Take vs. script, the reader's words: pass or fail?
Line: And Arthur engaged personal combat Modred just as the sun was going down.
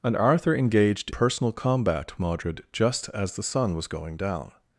pass